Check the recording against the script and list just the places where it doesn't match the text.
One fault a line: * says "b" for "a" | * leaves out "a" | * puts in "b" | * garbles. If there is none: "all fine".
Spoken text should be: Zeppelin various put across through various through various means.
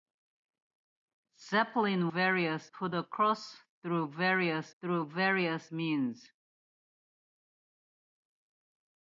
all fine